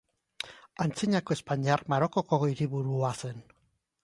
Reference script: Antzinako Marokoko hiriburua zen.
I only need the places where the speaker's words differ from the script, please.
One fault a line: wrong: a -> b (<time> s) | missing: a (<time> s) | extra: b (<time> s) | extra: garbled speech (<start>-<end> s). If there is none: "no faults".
extra: Espainiar (1.4 s)